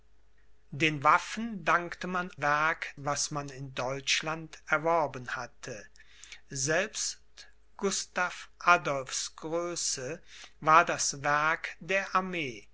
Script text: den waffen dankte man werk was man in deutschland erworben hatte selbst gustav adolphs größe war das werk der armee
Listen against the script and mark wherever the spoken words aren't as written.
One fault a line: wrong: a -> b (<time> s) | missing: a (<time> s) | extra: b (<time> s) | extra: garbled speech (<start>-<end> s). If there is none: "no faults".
no faults